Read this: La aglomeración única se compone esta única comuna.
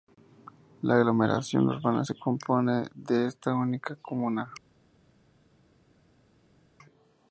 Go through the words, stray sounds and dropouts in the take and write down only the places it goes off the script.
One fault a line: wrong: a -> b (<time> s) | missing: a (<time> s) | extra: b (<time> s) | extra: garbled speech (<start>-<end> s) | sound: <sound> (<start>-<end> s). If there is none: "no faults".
wrong: única -> urbana (1.7 s)
extra: de (2.9 s)